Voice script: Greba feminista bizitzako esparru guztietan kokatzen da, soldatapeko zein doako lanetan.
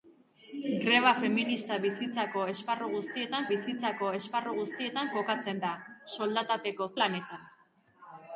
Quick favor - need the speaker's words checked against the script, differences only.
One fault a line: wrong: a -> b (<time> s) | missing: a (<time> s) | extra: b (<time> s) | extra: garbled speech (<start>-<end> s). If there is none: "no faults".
extra: bizitzako esparru guztietan (3.5 s)
missing: zein doako (6.9 s)